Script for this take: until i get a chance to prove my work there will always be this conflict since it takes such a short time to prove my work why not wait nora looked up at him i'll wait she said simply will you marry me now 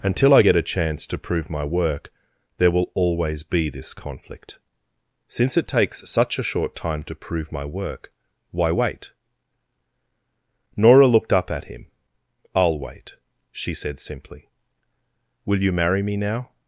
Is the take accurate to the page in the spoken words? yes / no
no